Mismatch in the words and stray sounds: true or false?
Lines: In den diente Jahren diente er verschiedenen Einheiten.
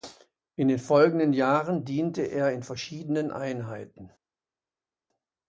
true